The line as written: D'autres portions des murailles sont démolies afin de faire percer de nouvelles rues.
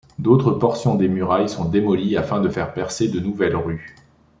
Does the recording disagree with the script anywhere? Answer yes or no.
no